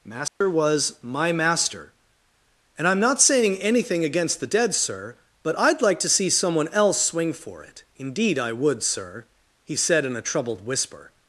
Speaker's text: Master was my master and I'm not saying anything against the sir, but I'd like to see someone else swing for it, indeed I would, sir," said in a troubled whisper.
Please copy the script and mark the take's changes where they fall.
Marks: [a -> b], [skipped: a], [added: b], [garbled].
Master was my master and I'm not saying anything against the [added: dead] sir, but I'd like to see someone else swing for it, indeed I would, sir," [added: he] said in a troubled whisper.